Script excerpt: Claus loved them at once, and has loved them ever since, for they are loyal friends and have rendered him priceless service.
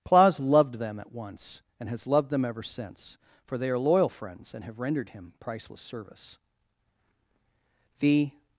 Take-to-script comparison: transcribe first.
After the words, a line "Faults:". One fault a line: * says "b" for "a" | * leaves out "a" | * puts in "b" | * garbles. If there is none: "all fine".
Claus loved them at once, and has loved them ever since, for they are loyal friends and have rendered him priceless service. The
Faults:
* puts in "The"